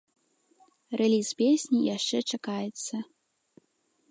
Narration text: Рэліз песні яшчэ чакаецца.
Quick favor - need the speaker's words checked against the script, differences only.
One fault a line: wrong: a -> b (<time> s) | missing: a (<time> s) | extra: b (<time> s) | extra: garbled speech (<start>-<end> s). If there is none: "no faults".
no faults